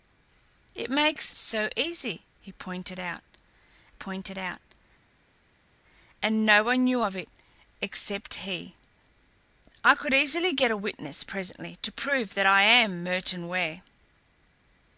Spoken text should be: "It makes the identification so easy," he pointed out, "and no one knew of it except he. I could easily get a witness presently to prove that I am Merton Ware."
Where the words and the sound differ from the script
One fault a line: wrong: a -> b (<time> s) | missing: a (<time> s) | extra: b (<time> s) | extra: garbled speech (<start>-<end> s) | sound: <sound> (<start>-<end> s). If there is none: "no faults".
missing: the identification (1.3 s)
extra: pointed out (3.9 s)